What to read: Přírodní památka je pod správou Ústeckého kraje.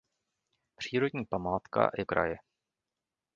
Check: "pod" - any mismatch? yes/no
yes